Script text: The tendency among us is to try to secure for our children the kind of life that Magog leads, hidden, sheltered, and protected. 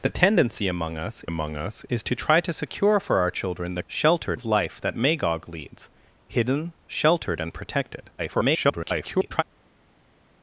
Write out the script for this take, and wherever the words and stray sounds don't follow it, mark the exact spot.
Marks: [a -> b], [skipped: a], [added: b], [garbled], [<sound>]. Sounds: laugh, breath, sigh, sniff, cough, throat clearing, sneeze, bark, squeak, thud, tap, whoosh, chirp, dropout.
The tendency among us [added: among us] is to try to secure for our children the [kind -> sheltered] of life that Magog leads, hidden, sheltered, and protected. [garbled]